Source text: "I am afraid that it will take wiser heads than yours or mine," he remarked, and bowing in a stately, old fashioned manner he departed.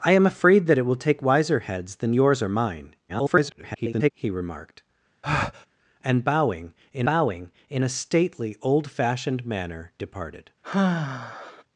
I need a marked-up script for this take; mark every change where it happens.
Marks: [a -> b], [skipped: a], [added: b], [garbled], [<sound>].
"I am afraid that it will take wiser heads than yours or mine," [garbled] he remarked, [breath] and bowing in [added: bowing in] a stately, old fashioned manner [skipped: he] departed. [sigh]